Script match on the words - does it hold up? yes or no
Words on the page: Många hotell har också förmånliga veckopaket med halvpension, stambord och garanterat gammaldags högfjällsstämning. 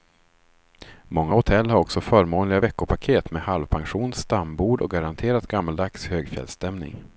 yes